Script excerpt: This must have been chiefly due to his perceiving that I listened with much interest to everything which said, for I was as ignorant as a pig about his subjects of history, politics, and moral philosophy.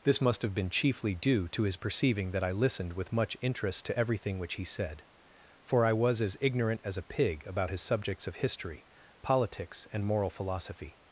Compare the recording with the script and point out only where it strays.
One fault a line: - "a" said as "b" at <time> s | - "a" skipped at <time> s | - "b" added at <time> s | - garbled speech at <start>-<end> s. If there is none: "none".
- "he" added at 4.5 s